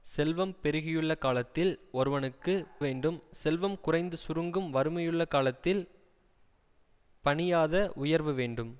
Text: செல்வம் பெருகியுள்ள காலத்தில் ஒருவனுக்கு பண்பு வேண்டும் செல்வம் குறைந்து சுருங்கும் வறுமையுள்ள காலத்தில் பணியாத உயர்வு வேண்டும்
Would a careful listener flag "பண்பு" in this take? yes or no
yes